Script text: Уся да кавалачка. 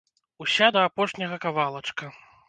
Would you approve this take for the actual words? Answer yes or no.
no